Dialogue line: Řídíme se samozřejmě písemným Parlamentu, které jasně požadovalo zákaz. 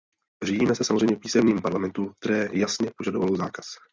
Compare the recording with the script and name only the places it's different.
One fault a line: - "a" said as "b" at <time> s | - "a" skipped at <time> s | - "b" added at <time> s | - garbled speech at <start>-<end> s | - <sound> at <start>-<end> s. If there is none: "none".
none